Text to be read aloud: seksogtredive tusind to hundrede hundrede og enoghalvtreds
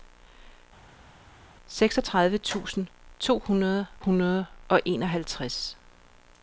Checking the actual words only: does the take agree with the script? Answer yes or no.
yes